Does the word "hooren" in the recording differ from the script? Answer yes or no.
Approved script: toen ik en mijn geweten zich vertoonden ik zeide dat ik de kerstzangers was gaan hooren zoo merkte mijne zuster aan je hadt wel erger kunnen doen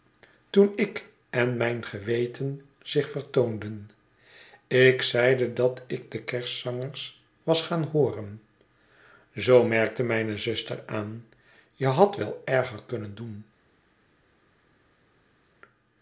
no